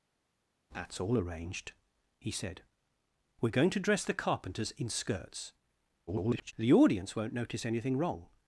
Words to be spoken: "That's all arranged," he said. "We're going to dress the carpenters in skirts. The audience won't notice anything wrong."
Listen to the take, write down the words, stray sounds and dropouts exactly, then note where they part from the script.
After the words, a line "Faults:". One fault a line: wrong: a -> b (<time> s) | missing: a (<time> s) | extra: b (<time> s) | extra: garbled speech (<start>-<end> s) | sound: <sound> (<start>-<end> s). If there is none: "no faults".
"That's all arranged," he said. "We're going to dress the carpenters in skirts. [garbled] The audience won't notice anything wrong."
Faults:
extra: garbled speech (6.1-6.5 s)